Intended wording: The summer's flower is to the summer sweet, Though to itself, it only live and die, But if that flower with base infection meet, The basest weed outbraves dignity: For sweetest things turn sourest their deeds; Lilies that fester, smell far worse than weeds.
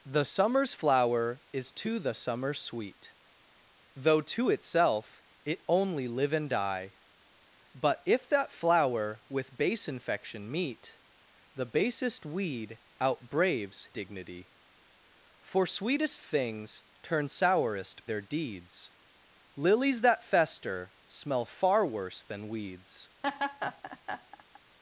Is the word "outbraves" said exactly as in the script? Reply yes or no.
yes